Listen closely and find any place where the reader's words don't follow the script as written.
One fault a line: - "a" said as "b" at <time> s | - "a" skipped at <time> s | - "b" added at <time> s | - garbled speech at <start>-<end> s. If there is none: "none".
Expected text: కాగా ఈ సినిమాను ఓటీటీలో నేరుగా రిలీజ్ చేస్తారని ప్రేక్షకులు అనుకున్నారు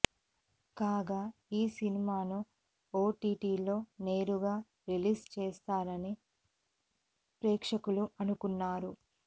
none